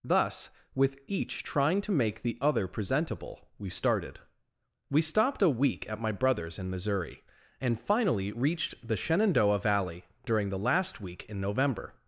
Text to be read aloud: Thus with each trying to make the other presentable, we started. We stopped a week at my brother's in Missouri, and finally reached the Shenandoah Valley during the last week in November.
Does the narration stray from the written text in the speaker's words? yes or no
no